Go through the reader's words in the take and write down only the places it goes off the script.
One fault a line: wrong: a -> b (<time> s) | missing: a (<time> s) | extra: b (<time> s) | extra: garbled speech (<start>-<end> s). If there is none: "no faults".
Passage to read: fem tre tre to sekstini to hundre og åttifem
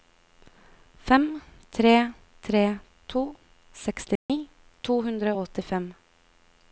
no faults